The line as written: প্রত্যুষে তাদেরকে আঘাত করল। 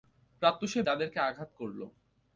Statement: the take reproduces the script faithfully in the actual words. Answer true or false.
true